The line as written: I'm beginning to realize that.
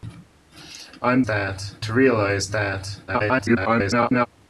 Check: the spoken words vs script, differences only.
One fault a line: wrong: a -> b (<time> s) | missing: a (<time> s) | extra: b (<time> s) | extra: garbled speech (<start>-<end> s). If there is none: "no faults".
wrong: beginning -> that (1.2 s)
extra: garbled speech (3.1-4.3 s)